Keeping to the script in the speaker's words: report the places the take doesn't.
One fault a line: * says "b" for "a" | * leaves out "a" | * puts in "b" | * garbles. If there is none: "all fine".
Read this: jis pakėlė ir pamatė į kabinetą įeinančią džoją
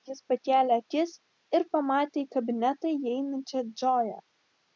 * puts in "akis"